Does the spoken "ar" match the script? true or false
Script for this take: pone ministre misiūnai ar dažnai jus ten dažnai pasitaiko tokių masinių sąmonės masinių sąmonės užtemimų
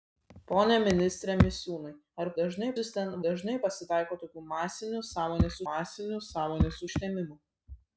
true